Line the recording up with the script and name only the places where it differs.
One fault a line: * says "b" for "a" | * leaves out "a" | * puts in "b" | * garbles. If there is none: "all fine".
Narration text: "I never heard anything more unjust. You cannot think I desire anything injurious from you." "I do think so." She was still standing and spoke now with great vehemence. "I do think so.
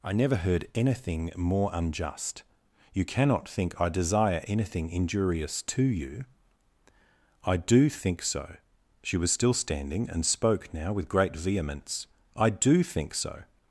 * says "to" for "from"